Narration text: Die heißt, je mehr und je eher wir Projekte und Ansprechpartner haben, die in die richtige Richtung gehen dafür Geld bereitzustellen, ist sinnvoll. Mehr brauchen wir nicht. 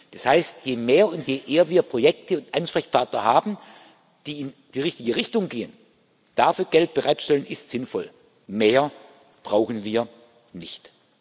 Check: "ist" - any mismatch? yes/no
no